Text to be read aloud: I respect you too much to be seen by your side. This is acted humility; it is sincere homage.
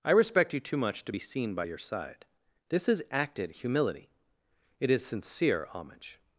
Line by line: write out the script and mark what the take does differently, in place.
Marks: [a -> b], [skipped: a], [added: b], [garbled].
I respect you too much to be seen by your side. This is acted humility; it is sincere homage.